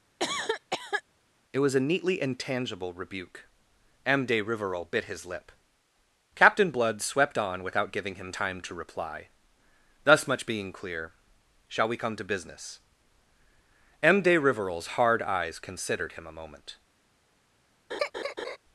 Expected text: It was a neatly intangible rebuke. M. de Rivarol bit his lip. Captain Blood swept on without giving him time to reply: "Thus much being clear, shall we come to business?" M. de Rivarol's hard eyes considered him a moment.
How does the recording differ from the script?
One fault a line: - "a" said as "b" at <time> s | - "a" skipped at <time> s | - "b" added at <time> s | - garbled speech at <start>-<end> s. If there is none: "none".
none